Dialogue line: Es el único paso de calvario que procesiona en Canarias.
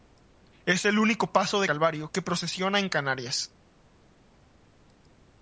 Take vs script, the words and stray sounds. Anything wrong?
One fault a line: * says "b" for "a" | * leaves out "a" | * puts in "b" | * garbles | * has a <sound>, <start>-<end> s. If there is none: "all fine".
all fine